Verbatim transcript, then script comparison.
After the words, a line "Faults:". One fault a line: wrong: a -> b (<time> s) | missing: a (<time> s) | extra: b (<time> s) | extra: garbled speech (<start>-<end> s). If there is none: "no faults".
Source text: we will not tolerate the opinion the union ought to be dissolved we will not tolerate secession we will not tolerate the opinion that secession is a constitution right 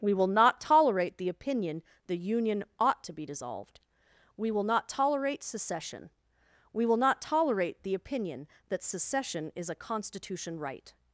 we will not tolerate the opinion the union ought to be dissolved we will not tolerate secession we will not tolerate the opinion that secession is a constitution right
Faults:
no faults